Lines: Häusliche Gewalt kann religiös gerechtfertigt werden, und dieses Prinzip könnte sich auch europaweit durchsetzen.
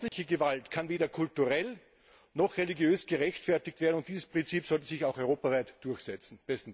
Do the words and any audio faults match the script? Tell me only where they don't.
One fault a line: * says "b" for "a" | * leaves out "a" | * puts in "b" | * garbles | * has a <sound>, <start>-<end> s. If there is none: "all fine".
* has a dropout, 0.1-0.1 s
* puts in "weder kulturell noch"
* says "sollte" for "könnte"